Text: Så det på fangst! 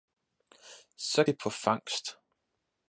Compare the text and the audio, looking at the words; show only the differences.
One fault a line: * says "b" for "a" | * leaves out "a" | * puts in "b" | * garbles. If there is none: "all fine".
all fine